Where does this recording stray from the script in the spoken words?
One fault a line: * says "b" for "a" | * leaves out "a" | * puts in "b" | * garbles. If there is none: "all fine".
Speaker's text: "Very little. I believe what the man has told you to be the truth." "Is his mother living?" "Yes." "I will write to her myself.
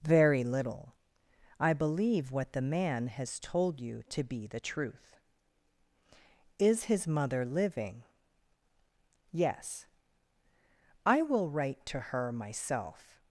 all fine